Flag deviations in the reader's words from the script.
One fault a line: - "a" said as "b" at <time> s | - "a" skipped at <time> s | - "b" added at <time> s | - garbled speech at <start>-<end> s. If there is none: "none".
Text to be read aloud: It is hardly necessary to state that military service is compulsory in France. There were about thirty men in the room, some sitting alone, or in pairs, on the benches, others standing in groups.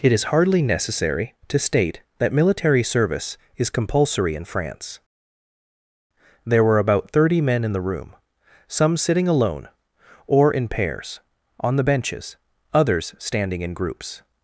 none